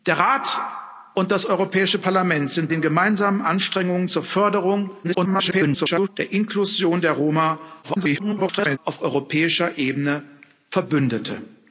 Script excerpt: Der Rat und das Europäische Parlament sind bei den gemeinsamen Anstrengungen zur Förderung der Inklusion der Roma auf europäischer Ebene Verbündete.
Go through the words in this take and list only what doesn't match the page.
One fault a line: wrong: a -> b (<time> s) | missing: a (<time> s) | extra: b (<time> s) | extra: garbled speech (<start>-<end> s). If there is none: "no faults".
missing: bei (2.7 s)
extra: garbled speech (5.0-6.1 s)
extra: garbled speech (7.8-8.8 s)